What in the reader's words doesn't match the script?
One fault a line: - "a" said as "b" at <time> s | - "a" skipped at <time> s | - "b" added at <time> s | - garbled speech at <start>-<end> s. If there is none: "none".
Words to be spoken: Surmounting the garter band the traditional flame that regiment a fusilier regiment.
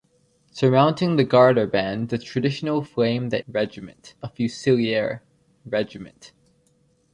none